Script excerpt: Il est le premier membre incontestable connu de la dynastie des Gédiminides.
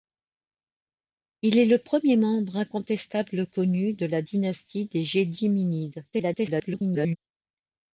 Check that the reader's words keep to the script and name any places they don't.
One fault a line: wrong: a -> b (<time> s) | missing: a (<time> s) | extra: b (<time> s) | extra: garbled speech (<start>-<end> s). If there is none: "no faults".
extra: garbled speech (6.1-7.2 s)